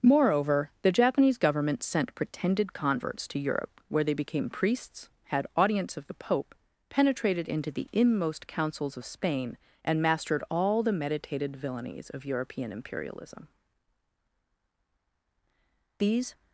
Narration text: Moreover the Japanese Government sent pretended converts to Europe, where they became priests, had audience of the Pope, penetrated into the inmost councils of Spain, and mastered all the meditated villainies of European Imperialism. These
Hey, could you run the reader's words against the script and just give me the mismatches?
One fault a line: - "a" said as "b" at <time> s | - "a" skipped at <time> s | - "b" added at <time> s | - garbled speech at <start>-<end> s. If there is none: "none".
none